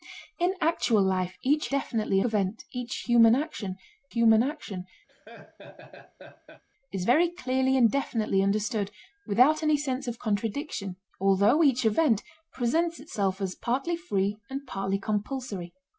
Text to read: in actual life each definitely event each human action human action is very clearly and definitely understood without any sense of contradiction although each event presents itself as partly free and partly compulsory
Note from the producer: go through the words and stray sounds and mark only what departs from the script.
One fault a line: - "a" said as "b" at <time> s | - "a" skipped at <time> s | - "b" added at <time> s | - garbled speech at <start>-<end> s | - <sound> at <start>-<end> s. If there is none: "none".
- laugh at 5.1-6.6 s